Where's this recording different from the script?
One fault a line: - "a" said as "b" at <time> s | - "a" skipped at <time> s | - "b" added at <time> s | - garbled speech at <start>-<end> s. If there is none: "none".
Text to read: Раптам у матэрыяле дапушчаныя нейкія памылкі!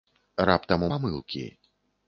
- "матэрыяле дапушчаныя нейкія" skipped at 0.9 s